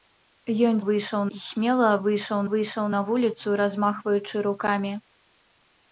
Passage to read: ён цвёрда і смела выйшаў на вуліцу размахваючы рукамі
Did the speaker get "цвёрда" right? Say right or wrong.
wrong